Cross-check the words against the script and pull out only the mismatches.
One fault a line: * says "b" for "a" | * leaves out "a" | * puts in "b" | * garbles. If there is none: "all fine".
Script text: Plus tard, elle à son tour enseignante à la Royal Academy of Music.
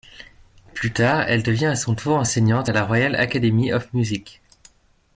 * puts in "devient"